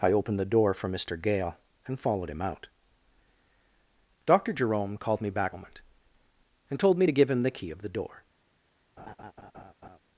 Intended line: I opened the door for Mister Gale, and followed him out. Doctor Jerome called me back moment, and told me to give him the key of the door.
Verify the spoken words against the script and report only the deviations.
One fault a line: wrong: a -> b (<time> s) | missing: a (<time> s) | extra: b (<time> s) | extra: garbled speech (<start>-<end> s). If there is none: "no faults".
no faults